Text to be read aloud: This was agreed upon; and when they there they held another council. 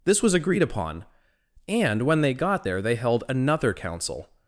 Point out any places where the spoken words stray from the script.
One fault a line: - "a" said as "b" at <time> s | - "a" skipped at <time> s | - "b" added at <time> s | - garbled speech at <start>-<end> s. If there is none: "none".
- "got" added at 2.3 s